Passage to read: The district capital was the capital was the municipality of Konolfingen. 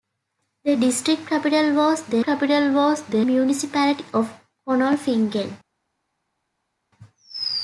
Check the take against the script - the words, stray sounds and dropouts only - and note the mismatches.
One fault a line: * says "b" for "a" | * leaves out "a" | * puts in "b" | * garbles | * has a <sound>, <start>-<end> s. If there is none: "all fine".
all fine